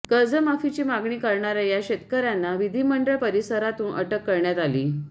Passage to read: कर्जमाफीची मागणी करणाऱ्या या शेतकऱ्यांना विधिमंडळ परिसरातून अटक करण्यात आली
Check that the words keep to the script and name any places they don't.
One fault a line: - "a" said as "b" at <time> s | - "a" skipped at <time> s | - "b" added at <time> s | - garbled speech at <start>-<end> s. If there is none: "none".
none